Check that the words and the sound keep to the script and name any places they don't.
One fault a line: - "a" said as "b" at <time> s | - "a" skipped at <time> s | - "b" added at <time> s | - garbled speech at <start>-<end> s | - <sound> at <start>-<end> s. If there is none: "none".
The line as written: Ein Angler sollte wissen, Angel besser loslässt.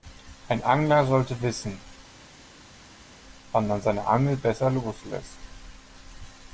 - "wann man seine" added at 3.5 s